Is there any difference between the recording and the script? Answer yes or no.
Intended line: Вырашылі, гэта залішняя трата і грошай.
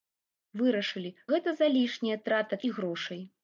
no